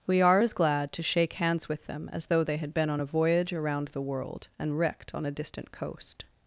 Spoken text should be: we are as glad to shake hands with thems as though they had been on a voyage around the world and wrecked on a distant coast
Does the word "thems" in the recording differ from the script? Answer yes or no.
yes